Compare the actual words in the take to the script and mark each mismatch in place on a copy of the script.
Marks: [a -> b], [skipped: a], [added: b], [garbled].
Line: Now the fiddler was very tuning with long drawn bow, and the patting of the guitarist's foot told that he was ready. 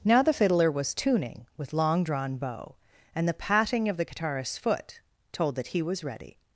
Now the fiddler was [skipped: very] tuning with long drawn bow, and the patting of the guitarist's foot told that he was ready.